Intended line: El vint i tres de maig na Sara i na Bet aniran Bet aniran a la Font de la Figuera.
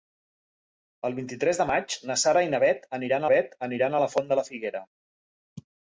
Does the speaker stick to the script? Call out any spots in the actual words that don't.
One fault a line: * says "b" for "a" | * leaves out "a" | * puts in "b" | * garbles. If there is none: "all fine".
all fine